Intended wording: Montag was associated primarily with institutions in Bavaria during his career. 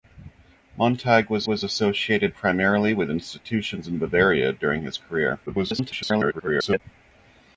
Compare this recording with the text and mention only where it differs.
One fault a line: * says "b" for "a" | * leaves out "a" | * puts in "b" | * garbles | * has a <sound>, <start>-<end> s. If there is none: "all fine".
* puts in "was"
* garbles